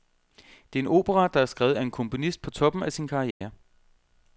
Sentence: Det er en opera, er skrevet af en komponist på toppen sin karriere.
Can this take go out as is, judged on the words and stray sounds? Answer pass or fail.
fail